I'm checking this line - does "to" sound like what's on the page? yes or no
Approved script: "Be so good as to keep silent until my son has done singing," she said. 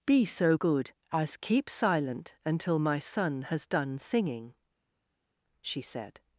no